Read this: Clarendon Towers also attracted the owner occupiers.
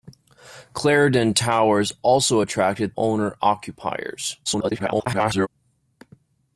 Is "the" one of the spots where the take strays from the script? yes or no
yes